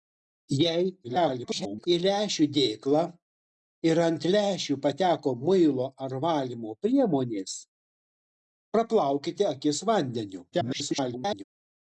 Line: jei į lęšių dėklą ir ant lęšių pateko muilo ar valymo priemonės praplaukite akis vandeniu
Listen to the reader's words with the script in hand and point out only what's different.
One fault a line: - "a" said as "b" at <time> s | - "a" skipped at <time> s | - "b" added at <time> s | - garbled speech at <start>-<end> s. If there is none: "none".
- garbled speech at 1.0-1.9 s
- garbled speech at 10.5-11.4 s